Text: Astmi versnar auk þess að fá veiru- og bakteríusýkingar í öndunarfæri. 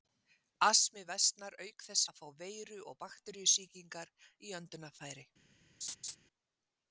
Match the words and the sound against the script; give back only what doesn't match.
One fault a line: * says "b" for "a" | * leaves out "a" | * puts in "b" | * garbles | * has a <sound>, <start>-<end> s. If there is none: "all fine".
* has a laugh, 5.8-6.2 s